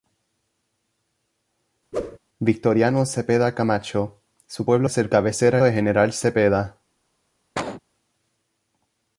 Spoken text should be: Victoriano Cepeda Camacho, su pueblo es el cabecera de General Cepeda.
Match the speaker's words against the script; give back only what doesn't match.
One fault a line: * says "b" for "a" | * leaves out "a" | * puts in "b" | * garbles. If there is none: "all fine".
all fine